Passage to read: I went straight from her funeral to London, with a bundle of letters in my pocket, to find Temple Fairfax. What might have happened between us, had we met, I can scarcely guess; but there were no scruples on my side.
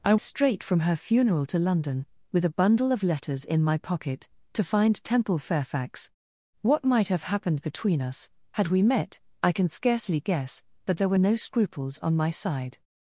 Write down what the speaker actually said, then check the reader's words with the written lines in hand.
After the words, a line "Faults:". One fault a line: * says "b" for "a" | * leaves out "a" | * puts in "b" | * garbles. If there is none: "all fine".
I straight from her funeral to London, with a bundle of letters in my pocket, to find Temple Fairfax. What might have happened between us, had we met, I can scarcely guess; but there were no scruples on my side.
Faults:
* leaves out "went"